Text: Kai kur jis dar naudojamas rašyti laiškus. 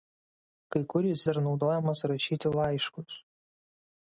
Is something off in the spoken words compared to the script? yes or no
no